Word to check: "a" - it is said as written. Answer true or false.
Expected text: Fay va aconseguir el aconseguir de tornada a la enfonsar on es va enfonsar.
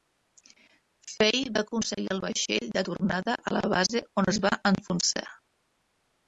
true